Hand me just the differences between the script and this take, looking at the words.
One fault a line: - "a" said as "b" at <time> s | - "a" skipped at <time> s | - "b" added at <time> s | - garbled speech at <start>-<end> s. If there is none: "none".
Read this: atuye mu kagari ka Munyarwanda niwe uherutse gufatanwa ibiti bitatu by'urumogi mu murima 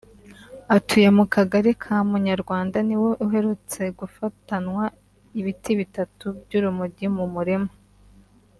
none